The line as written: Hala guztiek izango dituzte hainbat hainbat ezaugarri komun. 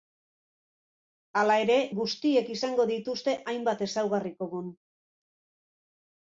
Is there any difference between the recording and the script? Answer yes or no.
yes